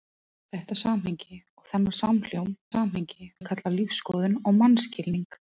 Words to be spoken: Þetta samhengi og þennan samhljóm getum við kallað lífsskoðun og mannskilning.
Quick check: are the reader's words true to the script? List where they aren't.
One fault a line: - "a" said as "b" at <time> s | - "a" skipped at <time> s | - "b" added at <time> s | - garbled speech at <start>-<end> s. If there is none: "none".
- "getum" said as "samhengi" at 2.7 s